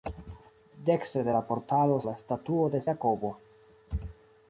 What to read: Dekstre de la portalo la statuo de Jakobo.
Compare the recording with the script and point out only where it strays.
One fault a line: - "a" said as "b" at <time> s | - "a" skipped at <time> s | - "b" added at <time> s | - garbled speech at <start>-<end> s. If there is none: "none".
none